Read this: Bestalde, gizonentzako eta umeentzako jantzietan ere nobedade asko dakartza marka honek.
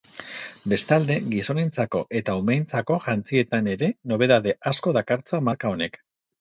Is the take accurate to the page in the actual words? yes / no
yes